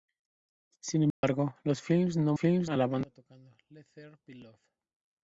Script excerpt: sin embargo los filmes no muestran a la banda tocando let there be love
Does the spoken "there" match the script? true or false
true